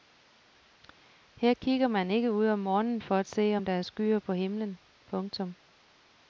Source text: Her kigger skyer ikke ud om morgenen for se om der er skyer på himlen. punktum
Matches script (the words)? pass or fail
fail